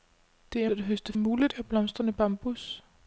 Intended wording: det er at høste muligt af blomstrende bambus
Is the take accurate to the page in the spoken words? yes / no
yes